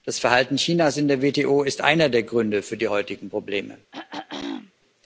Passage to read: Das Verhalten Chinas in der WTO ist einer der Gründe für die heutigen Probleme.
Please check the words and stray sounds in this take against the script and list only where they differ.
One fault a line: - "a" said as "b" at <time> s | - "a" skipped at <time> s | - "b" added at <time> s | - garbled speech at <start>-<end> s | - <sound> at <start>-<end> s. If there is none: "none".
- throat clearing at 3.9-4.7 s